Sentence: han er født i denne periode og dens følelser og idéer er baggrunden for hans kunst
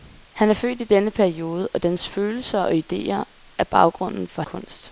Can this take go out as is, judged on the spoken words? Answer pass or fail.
fail